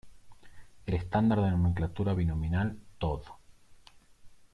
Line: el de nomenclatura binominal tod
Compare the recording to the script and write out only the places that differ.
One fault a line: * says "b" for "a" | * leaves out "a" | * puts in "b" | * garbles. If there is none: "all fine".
* puts in "estándar"